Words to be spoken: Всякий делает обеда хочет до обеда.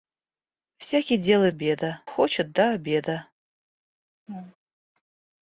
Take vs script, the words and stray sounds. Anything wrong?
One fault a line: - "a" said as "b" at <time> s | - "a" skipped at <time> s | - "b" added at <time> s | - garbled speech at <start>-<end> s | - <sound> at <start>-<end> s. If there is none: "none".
- laugh at 4.3-4.6 s